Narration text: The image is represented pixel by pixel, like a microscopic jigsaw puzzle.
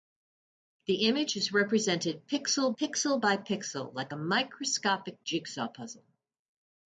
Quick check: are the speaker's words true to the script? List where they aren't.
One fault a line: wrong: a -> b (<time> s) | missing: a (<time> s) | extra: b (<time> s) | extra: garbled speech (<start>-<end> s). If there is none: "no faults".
extra: pixel (2.8 s)